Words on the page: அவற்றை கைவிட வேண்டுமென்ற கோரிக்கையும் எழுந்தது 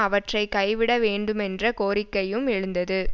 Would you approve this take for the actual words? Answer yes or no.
yes